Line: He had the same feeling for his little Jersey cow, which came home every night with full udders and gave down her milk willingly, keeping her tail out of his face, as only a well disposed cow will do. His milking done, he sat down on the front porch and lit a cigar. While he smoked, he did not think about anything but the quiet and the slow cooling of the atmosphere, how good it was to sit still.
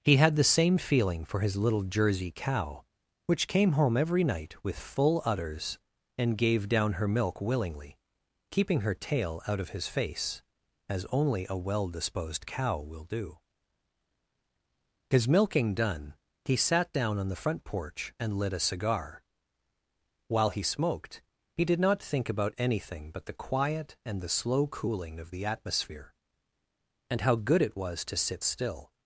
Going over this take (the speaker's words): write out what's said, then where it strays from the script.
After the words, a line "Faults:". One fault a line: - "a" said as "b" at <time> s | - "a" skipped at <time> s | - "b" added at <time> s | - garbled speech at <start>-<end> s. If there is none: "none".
He had the same feeling for his little Jersey cow, which came home every night with full udders and gave down her milk willingly, keeping her tail out of his face, as only a well disposed cow will do. His milking done, he sat down on the front porch and lit a cigar. While he smoked, he did not think about anything but the quiet and the slow cooling of the atmosphere, and how good it was to sit still.
Faults:
- "and" added at 27.1 s